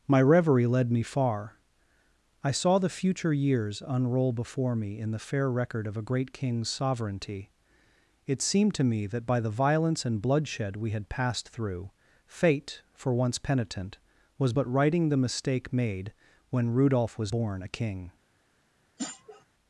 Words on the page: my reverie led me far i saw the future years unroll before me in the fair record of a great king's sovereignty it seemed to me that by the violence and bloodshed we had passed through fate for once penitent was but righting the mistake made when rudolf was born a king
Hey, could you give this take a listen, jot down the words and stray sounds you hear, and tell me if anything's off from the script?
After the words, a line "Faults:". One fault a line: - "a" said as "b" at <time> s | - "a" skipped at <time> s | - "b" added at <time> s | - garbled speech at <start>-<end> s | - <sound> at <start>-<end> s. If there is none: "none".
my reverie led me far i saw the future years unroll before me in the fair record of a great king's sovereignty it seemed to me that by the violence and bloodshed we had passed through fate for once penitent was but righting the mistake made when rudolf was born a king
Faults:
- sniff at 19.0-19.4 s